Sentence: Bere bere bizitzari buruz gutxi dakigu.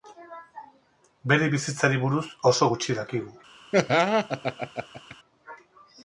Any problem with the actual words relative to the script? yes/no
yes